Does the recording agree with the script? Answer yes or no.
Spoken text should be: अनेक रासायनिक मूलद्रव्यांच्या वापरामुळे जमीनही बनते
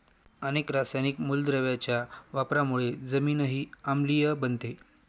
no